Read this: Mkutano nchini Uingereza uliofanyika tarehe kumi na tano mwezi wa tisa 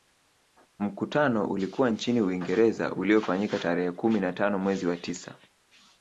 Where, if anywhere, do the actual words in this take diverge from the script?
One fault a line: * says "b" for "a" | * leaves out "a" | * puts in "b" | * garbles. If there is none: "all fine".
* puts in "ulikuwa"